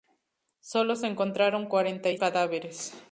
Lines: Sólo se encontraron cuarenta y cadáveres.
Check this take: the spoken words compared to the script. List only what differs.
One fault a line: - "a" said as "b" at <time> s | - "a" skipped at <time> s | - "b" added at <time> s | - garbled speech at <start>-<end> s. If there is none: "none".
none